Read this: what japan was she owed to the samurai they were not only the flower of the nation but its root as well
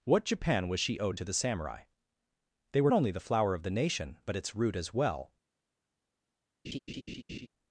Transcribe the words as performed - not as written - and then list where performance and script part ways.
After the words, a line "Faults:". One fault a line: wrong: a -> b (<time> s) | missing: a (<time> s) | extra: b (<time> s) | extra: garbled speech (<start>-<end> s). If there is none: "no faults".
what japan was she owed to the samurai they were only the flower of the nation but its root as well
Faults:
missing: not (2.9 s)